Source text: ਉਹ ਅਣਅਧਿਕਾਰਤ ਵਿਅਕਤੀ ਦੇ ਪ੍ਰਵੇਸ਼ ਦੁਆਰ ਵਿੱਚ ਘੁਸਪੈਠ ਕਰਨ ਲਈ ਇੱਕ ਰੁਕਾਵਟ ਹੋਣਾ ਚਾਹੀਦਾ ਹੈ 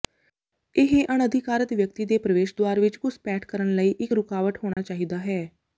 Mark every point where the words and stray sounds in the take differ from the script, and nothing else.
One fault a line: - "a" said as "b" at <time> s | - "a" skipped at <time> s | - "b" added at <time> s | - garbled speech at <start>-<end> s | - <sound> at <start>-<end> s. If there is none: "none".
- "ਉਹ" said as "ਇਹ" at 0.8 s
- dropout at 4.7-4.8 s